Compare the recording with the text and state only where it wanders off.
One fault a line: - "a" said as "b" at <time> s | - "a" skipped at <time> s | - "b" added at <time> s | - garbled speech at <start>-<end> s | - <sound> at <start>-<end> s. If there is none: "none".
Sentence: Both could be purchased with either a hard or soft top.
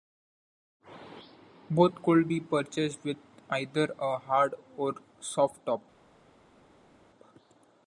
none